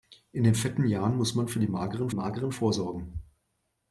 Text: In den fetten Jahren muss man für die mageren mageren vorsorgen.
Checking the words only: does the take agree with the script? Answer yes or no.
yes